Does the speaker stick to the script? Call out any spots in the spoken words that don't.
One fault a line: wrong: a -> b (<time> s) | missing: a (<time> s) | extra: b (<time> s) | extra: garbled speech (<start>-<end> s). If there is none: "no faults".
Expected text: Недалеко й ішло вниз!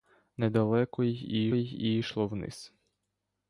extra: й (1.5 s)